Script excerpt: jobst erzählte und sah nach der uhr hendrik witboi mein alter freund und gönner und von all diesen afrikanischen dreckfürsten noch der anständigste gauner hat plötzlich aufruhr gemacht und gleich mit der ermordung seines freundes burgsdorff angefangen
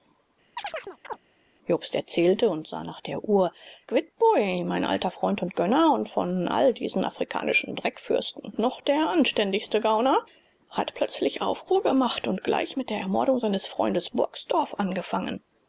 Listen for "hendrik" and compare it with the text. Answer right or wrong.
wrong